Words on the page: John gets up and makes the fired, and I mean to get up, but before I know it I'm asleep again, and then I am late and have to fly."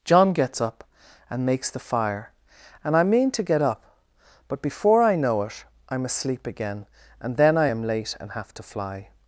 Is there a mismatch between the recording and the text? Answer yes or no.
yes